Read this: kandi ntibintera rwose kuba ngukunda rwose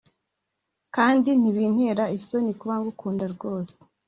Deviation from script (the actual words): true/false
true